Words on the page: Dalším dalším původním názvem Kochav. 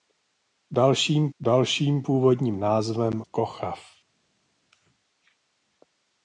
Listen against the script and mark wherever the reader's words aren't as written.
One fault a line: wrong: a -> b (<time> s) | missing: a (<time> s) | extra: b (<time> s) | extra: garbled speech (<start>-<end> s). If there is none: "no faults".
no faults